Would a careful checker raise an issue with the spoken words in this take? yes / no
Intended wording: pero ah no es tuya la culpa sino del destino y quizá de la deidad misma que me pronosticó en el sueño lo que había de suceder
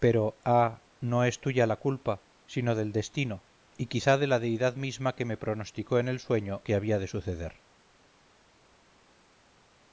yes